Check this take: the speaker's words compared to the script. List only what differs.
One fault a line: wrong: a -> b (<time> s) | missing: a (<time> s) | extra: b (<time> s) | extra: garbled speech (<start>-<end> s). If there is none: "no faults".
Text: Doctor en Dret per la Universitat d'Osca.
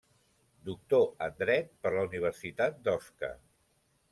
no faults